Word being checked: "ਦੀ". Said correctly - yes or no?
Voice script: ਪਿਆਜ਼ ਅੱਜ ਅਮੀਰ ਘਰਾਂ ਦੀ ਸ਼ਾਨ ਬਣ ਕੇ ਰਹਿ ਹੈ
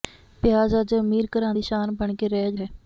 yes